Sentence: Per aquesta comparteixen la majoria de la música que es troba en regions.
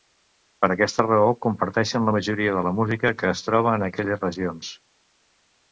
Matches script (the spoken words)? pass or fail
fail